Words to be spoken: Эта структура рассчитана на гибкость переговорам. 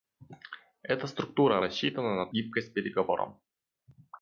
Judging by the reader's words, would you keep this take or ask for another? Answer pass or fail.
pass